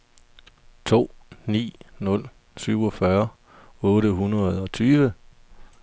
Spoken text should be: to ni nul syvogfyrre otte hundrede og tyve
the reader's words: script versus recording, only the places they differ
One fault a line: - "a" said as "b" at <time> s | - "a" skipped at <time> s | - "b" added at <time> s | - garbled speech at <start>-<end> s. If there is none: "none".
none